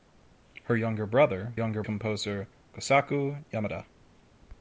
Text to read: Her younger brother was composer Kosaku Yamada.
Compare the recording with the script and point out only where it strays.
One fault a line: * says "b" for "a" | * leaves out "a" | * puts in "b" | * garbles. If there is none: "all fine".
* says "younger" for "was"